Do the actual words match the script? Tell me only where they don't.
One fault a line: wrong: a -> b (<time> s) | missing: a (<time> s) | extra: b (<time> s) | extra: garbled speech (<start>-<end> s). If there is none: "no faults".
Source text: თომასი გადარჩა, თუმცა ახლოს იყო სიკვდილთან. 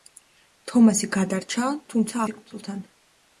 missing: ახლოს იყო (2.2 s)